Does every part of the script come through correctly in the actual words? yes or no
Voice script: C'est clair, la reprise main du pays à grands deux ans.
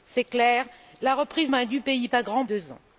yes